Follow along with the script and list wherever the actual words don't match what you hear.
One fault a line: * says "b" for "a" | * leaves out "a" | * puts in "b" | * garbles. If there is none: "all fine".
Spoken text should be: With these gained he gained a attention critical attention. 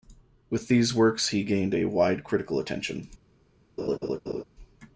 * says "works" for "gained"
* says "wide" for "attention"